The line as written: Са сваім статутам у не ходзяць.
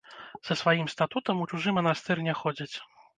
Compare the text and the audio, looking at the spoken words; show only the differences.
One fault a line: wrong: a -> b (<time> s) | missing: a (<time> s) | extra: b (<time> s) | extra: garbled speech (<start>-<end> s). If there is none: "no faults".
extra: чужы манастыр (1.5 s)